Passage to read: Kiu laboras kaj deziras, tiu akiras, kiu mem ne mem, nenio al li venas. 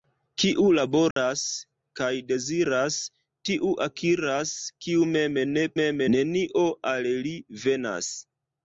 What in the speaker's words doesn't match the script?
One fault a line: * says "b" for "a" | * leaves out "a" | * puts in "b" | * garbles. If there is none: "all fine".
all fine